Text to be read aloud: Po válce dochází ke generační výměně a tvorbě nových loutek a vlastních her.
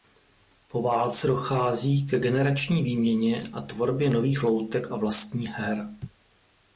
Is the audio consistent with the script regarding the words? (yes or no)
yes